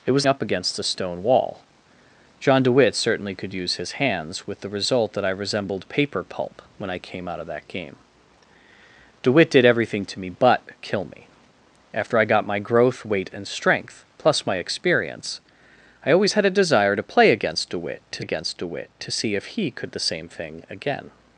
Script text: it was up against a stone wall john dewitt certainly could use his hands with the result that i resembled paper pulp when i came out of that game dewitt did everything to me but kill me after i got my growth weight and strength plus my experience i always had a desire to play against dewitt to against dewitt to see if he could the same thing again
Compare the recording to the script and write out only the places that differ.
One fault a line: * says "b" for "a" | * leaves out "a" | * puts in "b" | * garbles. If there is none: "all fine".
all fine